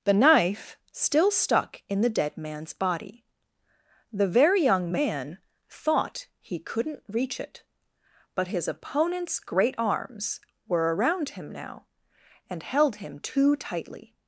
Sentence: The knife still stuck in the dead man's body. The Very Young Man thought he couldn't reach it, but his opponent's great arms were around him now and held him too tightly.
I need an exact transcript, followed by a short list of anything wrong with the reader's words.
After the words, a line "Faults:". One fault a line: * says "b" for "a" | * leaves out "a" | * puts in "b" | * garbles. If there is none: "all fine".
The knife still stuck in the dead man's body. The Very Young Man thought he couldn't reach it, but his opponent's great arms were around him now and held him too tightly.
Faults:
all fine